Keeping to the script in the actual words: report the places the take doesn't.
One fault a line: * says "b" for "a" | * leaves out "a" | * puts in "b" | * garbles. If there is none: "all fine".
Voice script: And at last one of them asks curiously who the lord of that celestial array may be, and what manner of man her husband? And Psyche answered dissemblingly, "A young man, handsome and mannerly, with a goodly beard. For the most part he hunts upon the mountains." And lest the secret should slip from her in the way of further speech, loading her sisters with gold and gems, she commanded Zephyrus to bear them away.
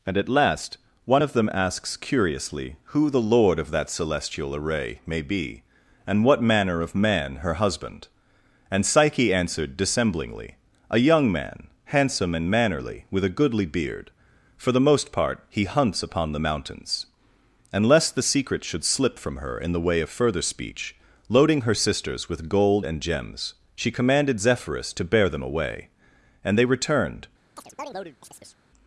* puts in "And they returned"